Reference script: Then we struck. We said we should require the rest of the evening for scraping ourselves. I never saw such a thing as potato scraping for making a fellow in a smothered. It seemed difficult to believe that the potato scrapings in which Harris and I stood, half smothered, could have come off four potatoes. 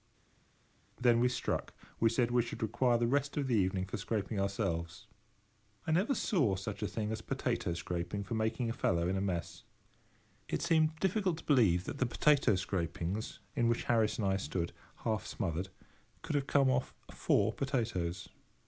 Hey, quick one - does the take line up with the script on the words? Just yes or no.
no